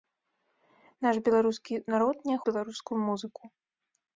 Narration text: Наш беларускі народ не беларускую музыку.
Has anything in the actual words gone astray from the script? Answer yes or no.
no